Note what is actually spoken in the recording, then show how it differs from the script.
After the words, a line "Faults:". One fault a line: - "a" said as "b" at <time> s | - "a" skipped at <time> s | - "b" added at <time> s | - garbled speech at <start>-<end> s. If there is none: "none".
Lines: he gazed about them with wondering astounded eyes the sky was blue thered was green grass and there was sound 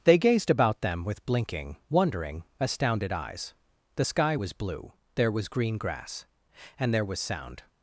they gazed about them with blinking wondering astounded eyes the sky was blue there was green grass and there was sound
Faults:
- "he" said as "they" at 0.0 s
- "blinking" added at 1.2 s
- "thered" said as "there" at 5.2 s